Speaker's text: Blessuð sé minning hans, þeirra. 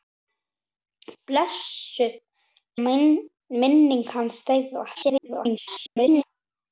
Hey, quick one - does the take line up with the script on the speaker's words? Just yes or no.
no